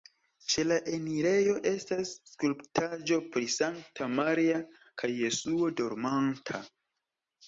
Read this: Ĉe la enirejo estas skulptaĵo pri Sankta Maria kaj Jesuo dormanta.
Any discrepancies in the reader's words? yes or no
no